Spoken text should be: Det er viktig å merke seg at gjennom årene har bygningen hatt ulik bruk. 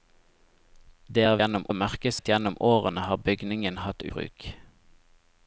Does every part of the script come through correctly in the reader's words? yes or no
no